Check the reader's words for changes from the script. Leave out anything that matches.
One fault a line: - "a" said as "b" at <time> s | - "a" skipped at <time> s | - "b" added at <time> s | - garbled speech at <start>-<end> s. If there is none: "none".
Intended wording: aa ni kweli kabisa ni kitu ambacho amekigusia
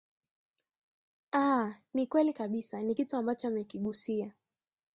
none